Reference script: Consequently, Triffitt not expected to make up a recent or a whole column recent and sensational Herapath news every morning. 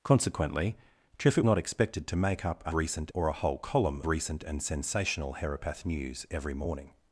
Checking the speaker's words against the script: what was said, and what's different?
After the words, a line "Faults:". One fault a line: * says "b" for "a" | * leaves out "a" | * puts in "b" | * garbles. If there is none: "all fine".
Consequently, Triffitt not expected to make up a recent or a whole column recent and sensational Herapath news every morning.
Faults:
all fine